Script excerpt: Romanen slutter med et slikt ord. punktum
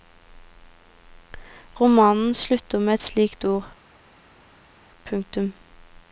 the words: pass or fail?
pass